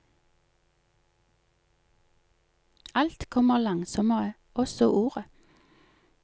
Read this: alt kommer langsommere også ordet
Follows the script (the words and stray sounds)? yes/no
yes